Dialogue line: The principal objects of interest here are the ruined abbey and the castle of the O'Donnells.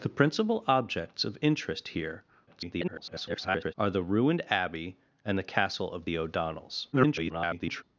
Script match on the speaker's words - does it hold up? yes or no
no